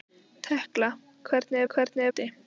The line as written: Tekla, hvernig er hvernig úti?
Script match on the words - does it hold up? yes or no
yes